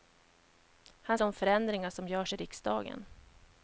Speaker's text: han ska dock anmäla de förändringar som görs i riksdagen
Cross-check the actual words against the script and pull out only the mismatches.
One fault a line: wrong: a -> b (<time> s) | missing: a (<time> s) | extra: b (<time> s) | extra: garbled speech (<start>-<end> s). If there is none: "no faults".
missing: ska dock anmäla (1.2 s)